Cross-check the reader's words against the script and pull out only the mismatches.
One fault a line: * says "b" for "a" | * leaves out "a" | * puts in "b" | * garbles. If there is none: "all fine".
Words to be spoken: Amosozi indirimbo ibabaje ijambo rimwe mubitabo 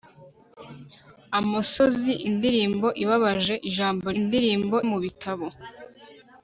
* says "indirimbo" for "rimwe"